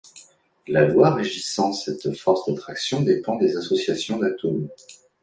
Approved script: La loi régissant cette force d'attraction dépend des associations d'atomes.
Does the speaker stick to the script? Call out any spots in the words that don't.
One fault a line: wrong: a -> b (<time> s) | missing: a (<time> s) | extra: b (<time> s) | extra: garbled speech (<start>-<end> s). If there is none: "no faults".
no faults